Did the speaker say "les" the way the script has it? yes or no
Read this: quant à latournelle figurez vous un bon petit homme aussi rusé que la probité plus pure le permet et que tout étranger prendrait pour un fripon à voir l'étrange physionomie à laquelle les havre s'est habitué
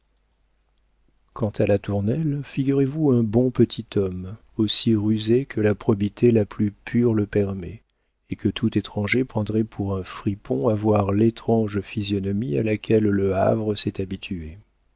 no